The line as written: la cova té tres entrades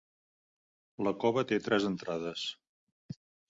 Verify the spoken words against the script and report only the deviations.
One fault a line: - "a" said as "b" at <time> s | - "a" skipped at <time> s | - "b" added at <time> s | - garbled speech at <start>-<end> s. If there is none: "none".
none